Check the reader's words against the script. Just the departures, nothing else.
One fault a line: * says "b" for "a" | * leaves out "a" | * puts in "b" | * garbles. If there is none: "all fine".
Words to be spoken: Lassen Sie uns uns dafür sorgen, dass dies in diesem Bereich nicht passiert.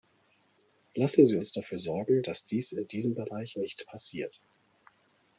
* leaves out "uns"